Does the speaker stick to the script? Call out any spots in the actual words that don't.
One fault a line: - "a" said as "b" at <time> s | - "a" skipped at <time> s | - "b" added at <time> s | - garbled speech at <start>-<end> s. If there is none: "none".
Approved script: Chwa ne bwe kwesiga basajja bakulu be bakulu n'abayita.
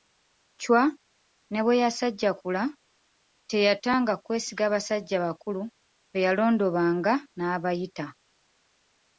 - "yasajjakula teyatanga" added at 1.8 s
- "bakulu" said as "yalondobanga" at 6.2 s